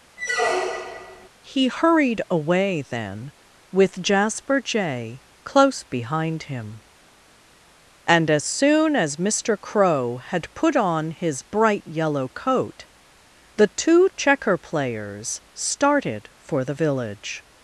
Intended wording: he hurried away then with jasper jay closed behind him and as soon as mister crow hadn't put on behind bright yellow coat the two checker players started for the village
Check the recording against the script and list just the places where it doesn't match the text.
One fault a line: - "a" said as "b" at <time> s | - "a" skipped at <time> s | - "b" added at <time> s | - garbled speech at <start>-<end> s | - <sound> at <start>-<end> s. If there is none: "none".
- squeak at 0.2-1.3 s
- "closed" said as "close" at 5.5 s
- "hadn't" said as "had" at 10.2 s
- "behind" said as "his" at 11.1 s